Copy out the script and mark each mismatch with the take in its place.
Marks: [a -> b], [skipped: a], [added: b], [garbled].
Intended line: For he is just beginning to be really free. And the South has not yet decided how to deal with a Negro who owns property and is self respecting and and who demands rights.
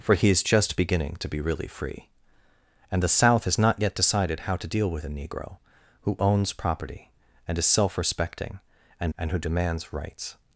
For he is just beginning to be really free. And the South has not yet decided how to deal with a Negro who owns property and is self respecting and and who demands rights.